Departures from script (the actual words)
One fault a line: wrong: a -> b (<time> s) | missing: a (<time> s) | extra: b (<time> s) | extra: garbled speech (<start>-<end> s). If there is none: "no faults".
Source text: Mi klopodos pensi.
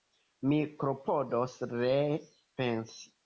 extra: ree (1.7 s)